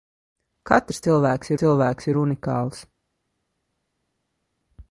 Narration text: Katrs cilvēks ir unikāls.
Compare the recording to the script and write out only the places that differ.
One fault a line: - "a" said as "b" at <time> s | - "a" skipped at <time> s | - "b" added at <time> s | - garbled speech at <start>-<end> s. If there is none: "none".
- "cilvēks" added at 1.6 s